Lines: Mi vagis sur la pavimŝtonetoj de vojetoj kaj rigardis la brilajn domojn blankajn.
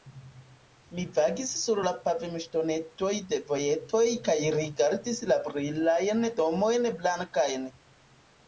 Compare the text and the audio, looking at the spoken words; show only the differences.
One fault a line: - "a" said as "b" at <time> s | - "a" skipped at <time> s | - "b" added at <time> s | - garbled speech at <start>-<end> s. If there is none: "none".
none